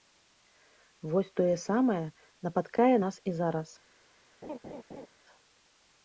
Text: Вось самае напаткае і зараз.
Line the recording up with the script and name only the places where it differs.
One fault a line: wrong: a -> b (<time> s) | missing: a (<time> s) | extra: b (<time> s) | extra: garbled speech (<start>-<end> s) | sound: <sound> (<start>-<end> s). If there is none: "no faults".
extra: тое (1.4 s)
extra: нас (3.0 s)
sound: laugh (4.4-5.1 s)